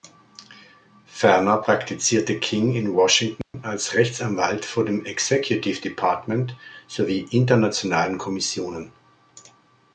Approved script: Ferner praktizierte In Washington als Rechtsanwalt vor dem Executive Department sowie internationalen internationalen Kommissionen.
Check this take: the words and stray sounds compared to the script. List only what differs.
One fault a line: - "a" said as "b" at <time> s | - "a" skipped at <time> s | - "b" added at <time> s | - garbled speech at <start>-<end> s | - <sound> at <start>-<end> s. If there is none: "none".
- "King" added at 2.4 s
- dropout at 3.4-3.5 s
- "internationalen" skipped at 8.2 s